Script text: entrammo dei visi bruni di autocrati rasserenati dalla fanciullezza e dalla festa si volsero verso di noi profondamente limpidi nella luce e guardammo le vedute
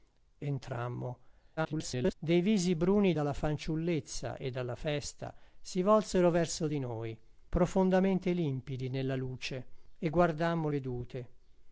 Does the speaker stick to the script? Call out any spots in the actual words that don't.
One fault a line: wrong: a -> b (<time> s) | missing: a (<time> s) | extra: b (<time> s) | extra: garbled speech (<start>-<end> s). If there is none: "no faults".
extra: garbled speech (1.6-2.1 s)
missing: di autocrati rasserenati (3.1 s)
missing: le (10.7 s)